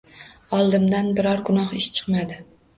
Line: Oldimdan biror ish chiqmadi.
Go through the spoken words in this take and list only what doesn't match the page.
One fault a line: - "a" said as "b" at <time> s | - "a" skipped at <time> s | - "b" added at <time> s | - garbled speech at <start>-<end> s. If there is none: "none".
- "gunoh" added at 1.5 s